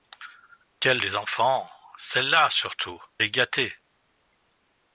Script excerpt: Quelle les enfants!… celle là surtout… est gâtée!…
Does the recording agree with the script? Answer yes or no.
yes